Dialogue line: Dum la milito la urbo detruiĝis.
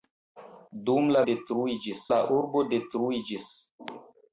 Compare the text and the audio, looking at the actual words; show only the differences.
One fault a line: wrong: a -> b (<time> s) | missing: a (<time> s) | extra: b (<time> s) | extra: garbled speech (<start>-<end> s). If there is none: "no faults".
wrong: milito -> detruiĝis (1.3 s)